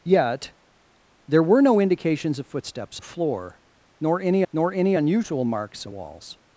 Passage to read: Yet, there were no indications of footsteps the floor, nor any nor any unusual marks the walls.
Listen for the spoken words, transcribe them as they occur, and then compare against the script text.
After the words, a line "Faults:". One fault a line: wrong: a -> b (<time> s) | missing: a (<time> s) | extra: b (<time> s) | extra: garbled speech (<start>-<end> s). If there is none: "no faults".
Yet, there were no indications of footsteps the floor, nor any nor any unusual marks the walls.
Faults:
no faults